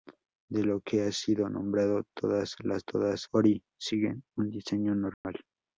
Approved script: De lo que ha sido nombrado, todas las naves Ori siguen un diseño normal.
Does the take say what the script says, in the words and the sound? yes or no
no